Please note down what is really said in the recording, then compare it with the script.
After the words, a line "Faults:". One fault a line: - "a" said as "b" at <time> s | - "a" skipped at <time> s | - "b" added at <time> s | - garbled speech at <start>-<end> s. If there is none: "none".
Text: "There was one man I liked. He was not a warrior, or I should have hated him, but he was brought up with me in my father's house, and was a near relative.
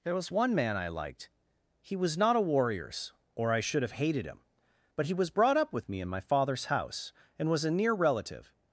"There was one man I liked. He was not a warriors, or I should have hated him, but he was brought up with me in my father's house, and was a near relative.
Faults:
- "warrior" said as "warriors" at 2.4 s